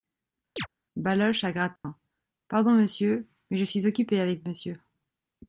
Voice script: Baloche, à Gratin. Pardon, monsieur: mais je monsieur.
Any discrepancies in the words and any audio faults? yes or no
yes